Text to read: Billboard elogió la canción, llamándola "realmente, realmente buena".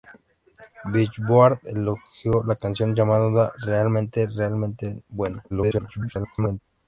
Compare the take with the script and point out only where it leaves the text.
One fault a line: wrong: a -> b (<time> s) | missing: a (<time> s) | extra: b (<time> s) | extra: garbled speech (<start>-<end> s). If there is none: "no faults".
extra: garbled speech (5.5-6.6 s)